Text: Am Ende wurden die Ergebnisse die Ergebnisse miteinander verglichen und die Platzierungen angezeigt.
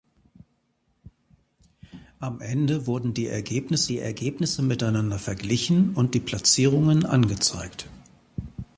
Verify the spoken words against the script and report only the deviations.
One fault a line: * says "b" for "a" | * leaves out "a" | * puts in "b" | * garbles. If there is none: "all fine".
all fine